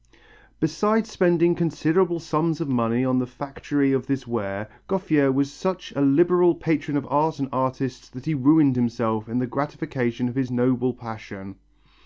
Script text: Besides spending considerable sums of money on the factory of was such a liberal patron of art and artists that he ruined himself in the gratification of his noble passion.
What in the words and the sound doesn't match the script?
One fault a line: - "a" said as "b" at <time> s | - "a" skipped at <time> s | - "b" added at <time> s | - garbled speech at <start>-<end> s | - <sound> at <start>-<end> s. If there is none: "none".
- "this ware Gouffier" added at 4.1 s